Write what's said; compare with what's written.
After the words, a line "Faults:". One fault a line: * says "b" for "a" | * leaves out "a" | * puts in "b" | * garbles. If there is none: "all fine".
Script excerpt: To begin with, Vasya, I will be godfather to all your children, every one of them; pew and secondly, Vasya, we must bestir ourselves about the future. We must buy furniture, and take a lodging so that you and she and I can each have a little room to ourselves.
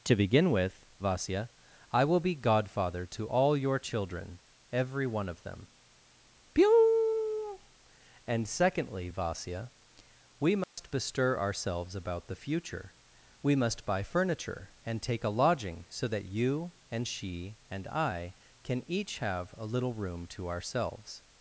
To begin with, Vasya, I will be godfather to all your children, every one of them; pew and secondly, Vasya, we must bestir ourselves about the future. We must buy furniture, and take a lodging so that you and she and I can each have a little room to ourselves.
Faults:
all fine